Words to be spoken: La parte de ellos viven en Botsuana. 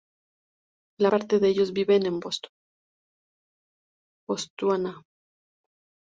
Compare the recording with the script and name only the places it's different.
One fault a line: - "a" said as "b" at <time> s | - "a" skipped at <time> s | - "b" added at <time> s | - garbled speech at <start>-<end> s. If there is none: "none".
none